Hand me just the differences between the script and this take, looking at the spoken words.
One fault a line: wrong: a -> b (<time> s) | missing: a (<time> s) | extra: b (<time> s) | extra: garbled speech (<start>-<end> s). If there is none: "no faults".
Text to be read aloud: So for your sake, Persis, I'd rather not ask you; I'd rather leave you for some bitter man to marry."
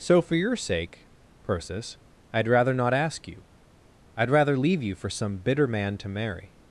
no faults